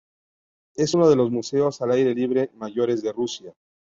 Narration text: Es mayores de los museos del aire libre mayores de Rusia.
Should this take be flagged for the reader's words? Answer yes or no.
yes